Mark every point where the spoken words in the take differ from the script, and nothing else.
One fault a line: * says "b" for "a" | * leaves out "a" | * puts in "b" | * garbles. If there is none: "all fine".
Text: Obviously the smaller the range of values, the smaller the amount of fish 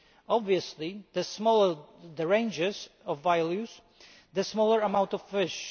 all fine